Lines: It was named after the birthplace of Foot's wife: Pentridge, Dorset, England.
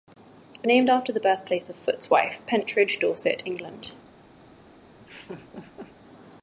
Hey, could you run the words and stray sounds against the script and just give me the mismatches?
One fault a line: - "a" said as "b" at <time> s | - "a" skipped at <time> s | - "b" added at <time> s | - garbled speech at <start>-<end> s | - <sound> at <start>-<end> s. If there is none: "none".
- "was" skipped at 0.7 s
- laugh at 5.0-6.0 s